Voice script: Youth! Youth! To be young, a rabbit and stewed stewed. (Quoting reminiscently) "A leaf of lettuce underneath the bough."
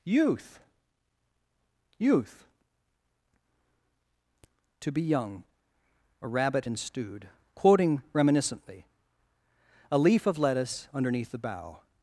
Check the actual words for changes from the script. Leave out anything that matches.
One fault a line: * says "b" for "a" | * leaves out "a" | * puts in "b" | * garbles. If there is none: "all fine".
* leaves out "stewed"